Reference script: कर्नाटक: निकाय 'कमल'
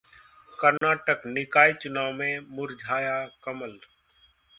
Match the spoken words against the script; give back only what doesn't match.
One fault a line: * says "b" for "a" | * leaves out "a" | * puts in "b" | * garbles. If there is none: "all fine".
* puts in "चुनाव में मुरझाया"